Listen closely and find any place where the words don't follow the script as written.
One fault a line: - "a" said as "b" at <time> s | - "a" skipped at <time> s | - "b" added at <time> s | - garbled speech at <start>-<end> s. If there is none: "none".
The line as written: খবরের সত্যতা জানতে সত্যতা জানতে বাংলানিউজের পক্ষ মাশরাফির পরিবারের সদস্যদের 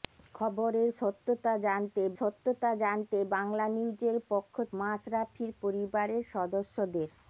none